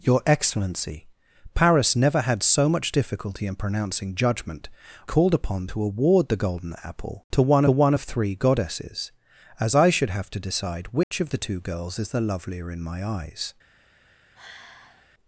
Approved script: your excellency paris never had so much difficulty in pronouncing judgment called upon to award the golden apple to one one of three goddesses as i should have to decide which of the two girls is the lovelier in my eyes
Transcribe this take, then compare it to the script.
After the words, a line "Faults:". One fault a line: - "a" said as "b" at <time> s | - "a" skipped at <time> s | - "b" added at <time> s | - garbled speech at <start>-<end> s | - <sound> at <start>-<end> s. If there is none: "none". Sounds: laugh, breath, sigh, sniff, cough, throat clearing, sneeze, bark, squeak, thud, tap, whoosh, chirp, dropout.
your excellency paris never had so much difficulty in pronouncing judgment called upon to award the golden apple to one one of three goddesses as i should have to decide which of the two girls is the lovelier in my eyes
Faults:
- dropout at 11.0-11.1 s
- sigh at 14.3-15.1 s